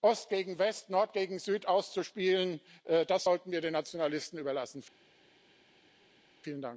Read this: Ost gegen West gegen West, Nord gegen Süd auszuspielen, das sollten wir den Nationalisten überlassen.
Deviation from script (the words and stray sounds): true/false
true